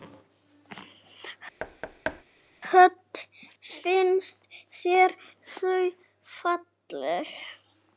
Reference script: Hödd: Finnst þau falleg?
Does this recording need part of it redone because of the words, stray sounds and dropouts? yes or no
yes